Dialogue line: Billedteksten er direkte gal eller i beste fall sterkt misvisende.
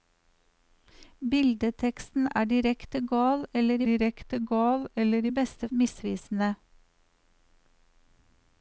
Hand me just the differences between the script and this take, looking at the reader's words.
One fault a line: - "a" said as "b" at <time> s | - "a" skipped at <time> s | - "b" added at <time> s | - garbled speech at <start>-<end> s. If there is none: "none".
- "direkte gal eller" added at 3.9 s
- "fall sterkt" skipped at 5.7 s